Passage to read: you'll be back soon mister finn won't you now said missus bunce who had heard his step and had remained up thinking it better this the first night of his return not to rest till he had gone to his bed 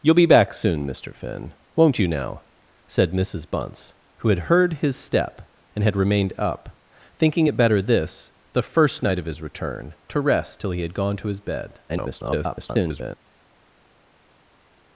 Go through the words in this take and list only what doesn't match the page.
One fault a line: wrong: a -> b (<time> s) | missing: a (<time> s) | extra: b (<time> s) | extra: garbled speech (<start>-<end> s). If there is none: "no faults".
missing: not (9.9 s)
extra: garbled speech (11.9-13.2 s)